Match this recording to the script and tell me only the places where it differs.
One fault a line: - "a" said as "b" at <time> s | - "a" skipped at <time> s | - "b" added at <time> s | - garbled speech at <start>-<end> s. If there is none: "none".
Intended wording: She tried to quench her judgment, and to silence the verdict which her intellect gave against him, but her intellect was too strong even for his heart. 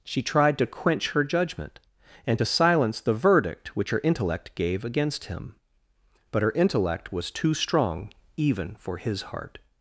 none